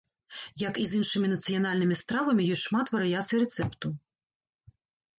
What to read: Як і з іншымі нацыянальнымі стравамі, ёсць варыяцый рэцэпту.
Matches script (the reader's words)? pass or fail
fail